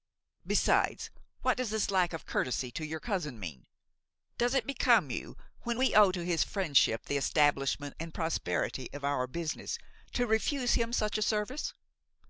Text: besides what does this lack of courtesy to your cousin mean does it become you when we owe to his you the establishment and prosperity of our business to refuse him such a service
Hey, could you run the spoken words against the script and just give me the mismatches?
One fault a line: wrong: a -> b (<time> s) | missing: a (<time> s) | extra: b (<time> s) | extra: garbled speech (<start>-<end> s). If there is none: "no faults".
wrong: you -> friendship (6.4 s)